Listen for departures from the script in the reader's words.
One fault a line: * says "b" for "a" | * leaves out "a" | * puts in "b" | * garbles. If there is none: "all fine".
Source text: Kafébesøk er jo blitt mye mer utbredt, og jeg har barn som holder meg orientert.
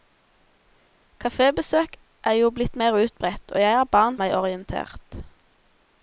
* leaves out "mye"
* leaves out "som holder"